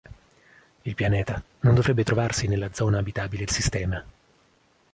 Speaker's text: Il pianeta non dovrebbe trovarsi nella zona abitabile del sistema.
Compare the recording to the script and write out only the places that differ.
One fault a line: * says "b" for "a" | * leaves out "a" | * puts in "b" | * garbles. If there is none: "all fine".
* leaves out "del"